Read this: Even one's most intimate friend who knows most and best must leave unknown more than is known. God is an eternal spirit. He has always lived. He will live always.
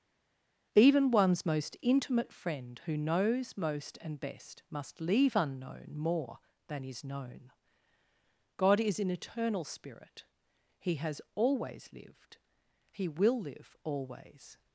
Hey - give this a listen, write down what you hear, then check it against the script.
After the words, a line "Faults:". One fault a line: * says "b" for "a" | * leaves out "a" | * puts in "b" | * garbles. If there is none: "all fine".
Even one's most intimate friend who knows most and best must leave unknown more than is known. God is an eternal spirit. He has always lived. He will live always.
Faults:
all fine